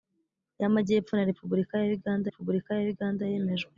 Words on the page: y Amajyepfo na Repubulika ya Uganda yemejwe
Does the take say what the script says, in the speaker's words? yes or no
no